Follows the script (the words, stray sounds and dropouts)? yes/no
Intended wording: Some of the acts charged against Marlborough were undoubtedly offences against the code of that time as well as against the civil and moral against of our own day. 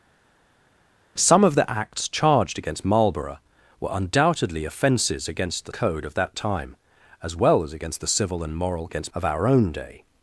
yes